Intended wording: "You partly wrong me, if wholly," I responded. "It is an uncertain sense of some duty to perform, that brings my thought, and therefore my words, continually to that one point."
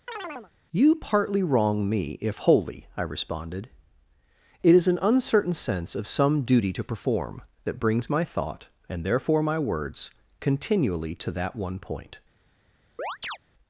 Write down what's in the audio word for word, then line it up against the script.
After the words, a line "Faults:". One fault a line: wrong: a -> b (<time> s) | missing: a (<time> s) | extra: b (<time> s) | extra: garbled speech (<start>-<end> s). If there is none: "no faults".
"You partly wrong me, if wholly," I responded. "It is an uncertain sense of some duty to perform, that brings my thought, and therefore my words, continually to that one point."
Faults:
no faults